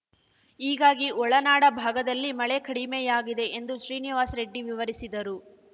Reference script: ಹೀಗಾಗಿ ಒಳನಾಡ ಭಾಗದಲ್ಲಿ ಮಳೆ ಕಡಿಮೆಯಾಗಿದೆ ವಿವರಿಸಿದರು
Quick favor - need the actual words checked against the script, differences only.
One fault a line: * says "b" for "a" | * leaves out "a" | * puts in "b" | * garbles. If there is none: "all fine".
* puts in "ಎಂದು ಶ್ರೀನಿವಾಸ್ ರೆಡ್ಡಿ"